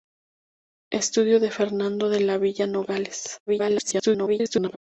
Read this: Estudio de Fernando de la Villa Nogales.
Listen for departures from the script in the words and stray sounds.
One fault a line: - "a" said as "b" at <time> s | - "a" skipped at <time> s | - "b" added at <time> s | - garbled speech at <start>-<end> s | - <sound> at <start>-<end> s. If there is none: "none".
- garbled speech at 3.5-4.8 s